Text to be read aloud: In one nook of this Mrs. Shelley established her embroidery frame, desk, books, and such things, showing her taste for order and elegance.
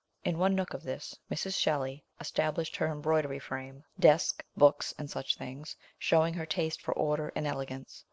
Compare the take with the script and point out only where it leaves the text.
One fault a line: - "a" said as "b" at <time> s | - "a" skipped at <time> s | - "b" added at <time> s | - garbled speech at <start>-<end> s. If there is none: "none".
none